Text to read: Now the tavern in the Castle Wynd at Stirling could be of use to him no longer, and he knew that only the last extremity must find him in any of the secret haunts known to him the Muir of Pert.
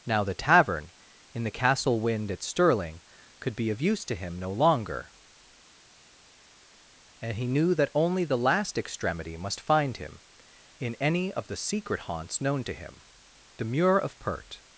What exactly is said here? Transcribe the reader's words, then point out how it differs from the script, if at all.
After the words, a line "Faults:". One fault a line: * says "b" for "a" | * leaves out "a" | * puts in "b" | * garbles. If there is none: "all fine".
Now the tavern in the Castle Wynd at Stirling could be of use to him no longer, and he knew that only the last extremity must find him in any of the secret haunts known to him the Muir of Pert.
Faults:
all fine